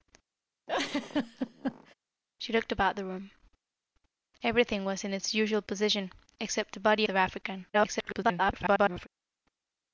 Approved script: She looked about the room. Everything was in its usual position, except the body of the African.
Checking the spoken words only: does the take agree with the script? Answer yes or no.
no